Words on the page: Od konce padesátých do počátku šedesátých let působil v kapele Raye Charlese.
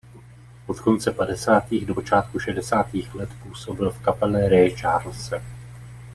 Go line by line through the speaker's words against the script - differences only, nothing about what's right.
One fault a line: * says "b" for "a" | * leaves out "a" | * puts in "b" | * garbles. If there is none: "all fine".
all fine